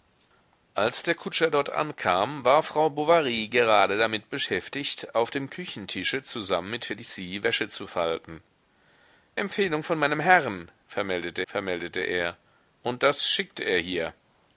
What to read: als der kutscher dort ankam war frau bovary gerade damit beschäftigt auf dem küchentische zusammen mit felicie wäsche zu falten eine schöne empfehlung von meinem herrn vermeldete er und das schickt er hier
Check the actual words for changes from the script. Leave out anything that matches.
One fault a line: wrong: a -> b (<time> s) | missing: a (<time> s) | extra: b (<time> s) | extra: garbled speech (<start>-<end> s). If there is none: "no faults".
missing: eine schöne (8.4 s)
extra: vermeldete (11.5 s)